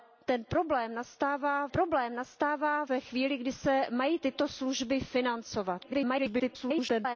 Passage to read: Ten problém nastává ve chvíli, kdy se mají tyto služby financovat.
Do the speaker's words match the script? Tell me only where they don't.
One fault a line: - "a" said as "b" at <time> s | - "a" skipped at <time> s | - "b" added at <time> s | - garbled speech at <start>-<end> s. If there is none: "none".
- "problém nastává" added at 1.7 s
- garbled speech at 5.8-7.2 s